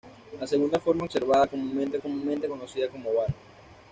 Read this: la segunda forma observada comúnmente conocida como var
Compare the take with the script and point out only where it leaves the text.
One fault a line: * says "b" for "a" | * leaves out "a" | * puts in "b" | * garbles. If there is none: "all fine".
* puts in "comúnmente"